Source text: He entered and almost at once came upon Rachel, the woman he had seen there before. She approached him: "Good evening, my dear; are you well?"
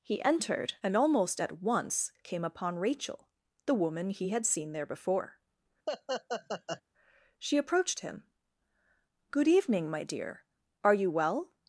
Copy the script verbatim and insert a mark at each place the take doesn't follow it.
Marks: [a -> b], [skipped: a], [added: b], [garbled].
He entered and almost at once came upon Rachel, the woman he had seen there before. She approached him: "Good evening, my dear; are you well?"